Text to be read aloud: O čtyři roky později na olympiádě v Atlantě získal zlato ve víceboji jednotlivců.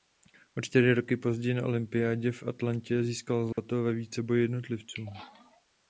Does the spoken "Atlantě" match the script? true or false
true